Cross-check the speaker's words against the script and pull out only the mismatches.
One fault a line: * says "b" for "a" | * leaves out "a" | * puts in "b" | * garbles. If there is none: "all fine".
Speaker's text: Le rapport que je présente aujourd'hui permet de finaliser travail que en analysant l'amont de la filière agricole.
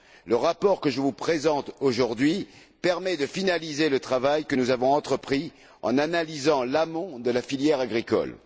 * puts in "vous"
* puts in "le"
* puts in "nous avons entrepris"